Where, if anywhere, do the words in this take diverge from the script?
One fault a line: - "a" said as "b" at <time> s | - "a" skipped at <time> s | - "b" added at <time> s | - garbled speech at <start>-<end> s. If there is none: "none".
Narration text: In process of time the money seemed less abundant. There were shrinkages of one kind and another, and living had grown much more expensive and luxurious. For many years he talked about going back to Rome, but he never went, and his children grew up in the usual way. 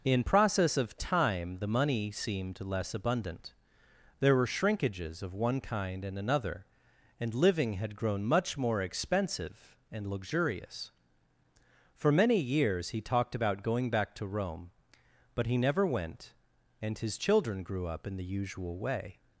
none